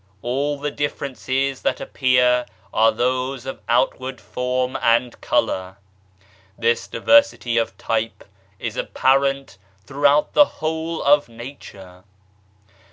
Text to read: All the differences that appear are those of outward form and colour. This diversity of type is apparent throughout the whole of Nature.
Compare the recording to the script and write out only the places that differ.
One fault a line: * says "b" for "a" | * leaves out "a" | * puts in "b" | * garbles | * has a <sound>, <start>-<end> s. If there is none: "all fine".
all fine